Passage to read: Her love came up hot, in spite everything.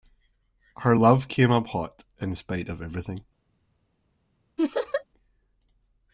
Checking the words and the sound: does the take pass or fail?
fail